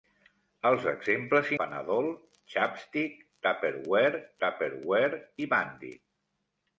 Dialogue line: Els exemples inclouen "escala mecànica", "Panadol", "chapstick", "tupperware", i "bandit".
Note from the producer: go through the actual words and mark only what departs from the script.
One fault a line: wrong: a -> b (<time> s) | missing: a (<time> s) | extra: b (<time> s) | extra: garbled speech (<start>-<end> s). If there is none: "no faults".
missing: inclouen escala mecànica (1.5 s)
extra: tupperware (4.5 s)